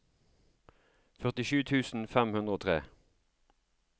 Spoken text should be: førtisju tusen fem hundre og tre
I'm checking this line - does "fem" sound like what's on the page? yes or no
yes